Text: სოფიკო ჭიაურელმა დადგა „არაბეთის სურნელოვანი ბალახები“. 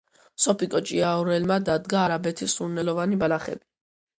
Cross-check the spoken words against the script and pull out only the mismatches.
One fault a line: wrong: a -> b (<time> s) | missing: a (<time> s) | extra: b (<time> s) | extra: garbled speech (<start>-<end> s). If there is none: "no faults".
no faults